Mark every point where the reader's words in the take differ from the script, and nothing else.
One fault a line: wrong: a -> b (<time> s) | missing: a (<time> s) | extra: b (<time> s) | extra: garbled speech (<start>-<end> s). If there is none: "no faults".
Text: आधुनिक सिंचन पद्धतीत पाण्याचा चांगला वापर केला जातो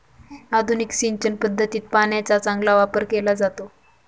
no faults